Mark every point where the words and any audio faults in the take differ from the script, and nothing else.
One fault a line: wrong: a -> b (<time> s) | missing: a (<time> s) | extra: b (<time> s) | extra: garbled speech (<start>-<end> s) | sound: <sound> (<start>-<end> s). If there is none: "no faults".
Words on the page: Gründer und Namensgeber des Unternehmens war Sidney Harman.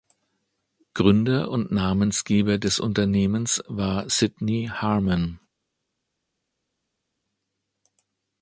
no faults